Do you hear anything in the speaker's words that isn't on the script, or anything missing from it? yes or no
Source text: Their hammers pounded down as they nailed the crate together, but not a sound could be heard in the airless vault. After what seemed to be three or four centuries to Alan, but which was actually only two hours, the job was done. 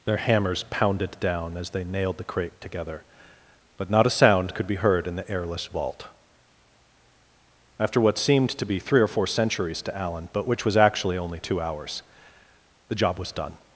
no